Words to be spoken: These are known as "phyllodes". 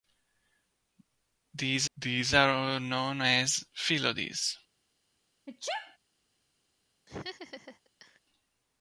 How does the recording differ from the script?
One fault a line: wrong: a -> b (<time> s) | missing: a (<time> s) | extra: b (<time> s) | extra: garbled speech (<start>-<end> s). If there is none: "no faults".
extra: these (2.0 s)